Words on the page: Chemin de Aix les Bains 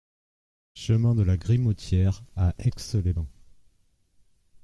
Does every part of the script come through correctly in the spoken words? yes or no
no